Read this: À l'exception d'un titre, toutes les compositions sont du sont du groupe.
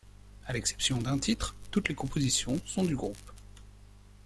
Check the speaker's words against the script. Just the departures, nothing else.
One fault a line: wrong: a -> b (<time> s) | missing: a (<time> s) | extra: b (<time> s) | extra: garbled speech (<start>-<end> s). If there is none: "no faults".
missing: sont du (3.0 s)